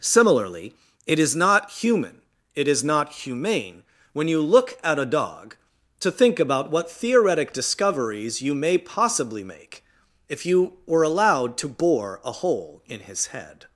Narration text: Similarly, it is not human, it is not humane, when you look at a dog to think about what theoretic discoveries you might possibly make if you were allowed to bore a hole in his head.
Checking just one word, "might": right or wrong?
wrong